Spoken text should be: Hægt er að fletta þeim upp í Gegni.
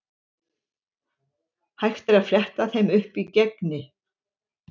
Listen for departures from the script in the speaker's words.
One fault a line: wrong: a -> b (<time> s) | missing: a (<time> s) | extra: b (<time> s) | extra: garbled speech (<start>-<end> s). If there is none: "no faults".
no faults